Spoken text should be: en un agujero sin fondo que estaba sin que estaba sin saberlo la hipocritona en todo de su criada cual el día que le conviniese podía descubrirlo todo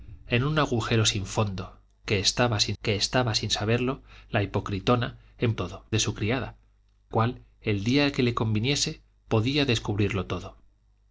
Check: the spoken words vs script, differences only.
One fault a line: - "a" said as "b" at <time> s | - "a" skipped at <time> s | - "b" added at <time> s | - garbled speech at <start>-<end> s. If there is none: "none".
none